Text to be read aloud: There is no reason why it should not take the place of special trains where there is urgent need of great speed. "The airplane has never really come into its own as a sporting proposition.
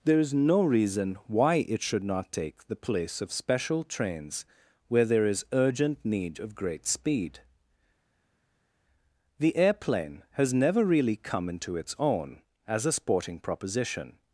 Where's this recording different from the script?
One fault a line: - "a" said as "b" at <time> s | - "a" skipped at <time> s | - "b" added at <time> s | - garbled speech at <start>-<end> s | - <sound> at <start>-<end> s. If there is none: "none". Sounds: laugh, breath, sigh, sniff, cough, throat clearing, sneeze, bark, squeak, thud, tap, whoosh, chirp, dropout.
none